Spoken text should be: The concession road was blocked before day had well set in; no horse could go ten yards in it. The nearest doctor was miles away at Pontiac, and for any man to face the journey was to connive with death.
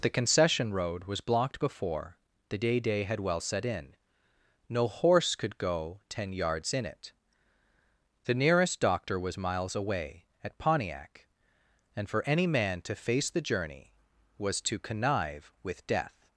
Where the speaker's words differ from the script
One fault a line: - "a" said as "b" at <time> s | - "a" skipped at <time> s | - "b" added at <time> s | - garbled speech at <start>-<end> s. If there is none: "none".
- "the day" added at 2.5 s